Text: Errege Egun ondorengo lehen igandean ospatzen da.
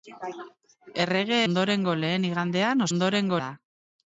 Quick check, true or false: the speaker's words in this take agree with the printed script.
false